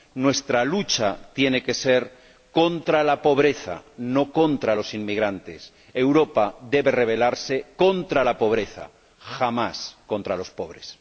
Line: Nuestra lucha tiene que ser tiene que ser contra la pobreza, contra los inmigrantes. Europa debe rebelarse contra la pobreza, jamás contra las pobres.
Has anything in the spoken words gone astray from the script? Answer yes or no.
yes